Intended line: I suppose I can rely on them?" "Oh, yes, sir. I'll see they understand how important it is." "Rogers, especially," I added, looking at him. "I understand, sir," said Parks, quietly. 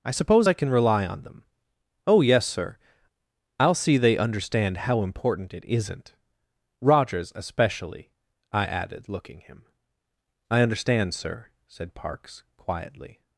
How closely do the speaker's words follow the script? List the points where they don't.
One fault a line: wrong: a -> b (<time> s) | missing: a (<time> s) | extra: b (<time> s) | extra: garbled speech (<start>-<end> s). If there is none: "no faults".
wrong: is -> isn't (5.6 s)
missing: at (9.4 s)